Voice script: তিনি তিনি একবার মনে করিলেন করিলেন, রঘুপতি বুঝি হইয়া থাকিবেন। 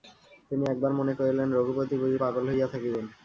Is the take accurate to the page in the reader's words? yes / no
no